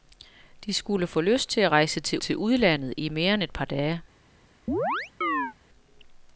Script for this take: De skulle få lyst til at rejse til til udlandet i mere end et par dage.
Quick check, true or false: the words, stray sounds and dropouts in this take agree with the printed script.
false